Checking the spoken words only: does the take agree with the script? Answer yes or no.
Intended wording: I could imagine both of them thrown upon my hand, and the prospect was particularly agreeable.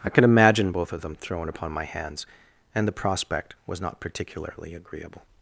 no